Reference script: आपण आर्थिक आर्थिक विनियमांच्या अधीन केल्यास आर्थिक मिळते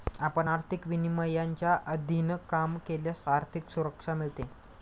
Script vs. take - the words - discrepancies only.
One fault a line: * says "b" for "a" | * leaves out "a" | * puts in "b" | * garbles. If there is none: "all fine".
* leaves out "आर्थिक"
* puts in "काम"
* puts in "सुरक्षा"